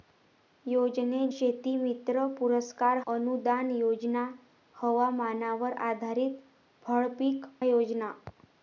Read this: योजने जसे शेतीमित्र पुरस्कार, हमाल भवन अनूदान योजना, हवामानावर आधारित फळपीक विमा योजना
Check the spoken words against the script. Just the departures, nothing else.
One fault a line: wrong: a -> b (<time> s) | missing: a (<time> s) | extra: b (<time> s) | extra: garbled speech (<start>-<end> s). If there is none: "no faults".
missing: जसे (1.3 s)
missing: हमाल भवन (3.0 s)
missing: विमा (7.4 s)